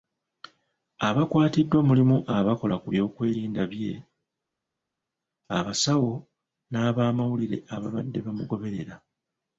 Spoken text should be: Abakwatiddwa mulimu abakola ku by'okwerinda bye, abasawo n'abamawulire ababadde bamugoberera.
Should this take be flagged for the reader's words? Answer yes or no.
no